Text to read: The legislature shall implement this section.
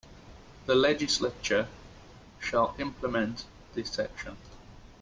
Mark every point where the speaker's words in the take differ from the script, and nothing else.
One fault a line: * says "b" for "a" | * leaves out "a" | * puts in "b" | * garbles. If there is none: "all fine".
all fine